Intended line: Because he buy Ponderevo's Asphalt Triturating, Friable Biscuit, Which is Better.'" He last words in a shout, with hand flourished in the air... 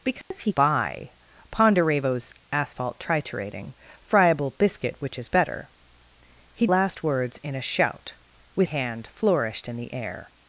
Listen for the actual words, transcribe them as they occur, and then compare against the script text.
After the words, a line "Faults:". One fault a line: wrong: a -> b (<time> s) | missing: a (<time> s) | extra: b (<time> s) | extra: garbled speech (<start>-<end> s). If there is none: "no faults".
Because he buy Ponderevo's Asphalt Triturating, Friable Biscuit, Which is Better.'" He last words in a shout, with hand flourished in the air...
Faults:
no faults